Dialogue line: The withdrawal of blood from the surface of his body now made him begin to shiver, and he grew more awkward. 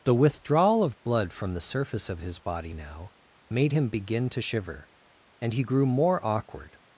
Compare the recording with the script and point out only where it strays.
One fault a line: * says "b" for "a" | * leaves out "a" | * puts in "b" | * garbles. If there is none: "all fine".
all fine